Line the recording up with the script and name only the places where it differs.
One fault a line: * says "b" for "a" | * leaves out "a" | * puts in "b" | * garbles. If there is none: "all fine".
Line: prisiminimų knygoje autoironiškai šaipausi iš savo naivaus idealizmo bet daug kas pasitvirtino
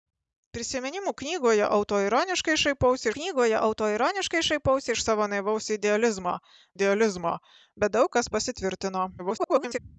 * puts in "knygoje autoironiškai šaipausi"
* puts in "idealizmo"
* garbles